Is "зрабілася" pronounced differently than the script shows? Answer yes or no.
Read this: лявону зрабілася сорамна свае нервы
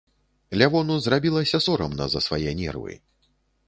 no